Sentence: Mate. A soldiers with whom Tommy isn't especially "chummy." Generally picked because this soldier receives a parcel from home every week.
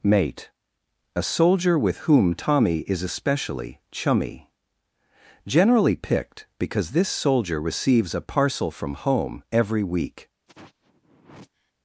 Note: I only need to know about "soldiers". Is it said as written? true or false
false